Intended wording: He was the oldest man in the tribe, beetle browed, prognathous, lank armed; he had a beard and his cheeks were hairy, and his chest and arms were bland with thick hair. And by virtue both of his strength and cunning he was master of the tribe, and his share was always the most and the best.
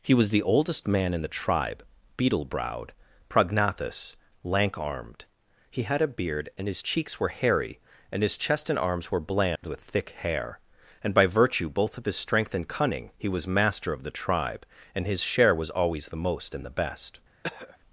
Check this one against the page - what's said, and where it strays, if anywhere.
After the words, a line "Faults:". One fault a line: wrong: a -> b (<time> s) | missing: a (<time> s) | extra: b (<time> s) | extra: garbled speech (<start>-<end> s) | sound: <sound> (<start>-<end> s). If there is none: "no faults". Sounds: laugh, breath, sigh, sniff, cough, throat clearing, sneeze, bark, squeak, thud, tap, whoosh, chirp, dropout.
He was the oldest man in the tribe, beetle browed, prognathous, lank armed; he had a beard and his cheeks were hairy, and his chest and arms were bland with thick hair. And by virtue both of his strength and cunning he was master of the tribe, and his share was always the most and the best.
Faults:
sound: dropout (9.6-9.6 s)
sound: throat clearing (17.4-17.8 s)